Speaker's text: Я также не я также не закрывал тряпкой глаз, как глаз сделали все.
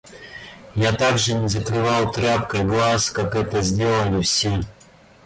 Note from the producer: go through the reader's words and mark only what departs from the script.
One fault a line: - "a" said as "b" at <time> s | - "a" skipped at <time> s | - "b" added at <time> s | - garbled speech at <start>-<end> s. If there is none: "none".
- "я также не" skipped at 1.5 s
- "глаз" said as "это" at 3.3 s